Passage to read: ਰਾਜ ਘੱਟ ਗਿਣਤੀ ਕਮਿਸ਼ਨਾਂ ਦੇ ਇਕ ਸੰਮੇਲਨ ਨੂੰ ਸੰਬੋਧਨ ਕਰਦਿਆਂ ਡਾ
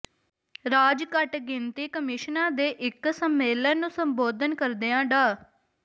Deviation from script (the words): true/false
false